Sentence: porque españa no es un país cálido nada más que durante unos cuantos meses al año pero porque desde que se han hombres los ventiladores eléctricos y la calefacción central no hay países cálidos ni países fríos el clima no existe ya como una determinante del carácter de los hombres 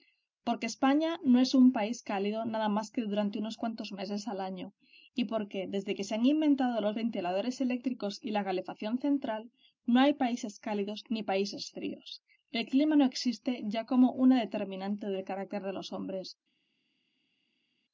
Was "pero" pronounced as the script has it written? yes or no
no